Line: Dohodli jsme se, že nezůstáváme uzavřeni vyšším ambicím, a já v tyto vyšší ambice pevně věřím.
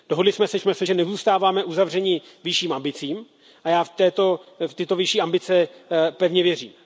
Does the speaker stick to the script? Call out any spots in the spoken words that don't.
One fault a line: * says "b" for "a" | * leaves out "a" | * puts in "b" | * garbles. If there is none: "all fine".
* puts in "jsme se"